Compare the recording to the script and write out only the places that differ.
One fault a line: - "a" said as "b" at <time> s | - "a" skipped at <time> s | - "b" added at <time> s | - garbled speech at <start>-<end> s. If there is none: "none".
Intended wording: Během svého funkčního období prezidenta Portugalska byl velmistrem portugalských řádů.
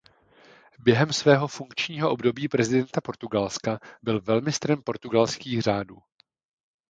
none